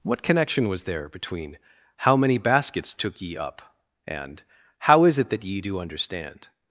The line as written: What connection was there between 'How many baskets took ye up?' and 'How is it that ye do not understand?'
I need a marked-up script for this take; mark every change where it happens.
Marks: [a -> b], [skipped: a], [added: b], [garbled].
What connection was there between 'How many baskets took ye up?' and 'How is it that ye do [skipped: not] understand?'